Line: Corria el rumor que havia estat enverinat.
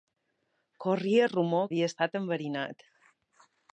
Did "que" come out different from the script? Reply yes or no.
yes